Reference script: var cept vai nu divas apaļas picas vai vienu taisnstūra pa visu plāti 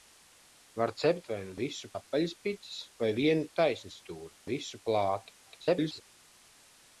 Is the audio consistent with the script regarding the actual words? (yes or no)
no